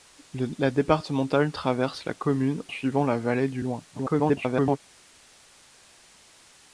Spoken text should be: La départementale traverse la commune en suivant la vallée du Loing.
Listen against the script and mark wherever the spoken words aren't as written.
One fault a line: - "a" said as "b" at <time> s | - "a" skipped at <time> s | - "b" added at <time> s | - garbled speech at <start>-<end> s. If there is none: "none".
- "en" skipped at 2.6 s
- garbled speech at 3.9-4.8 s